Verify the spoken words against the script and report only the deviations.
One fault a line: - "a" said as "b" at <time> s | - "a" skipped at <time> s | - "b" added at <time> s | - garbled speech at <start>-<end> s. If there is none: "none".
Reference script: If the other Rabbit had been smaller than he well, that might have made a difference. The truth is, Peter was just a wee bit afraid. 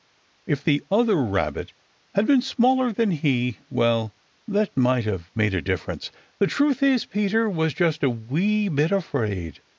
none